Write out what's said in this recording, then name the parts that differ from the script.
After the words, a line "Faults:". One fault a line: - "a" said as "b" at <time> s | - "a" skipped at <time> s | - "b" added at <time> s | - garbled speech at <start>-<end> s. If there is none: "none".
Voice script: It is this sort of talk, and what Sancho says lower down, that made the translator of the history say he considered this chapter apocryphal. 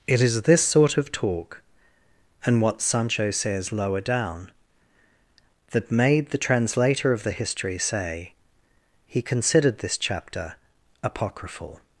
It is this sort of talk, and what Sancho says lower down, that made the translator of the history say he considered this chapter apocryphal.
Faults:
none